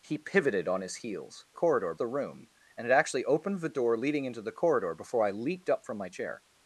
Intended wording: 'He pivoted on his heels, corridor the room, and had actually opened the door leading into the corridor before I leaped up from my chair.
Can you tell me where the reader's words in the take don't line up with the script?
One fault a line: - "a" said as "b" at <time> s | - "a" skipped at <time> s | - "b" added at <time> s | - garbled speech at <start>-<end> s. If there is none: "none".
none